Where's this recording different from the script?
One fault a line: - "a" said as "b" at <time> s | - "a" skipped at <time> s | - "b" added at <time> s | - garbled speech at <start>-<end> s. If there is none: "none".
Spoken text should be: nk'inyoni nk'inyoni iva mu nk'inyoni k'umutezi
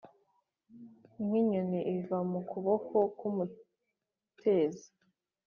- "nk'inyoni" skipped at 1.8 s
- "nk'inyoni" said as "kuboko" at 2.5 s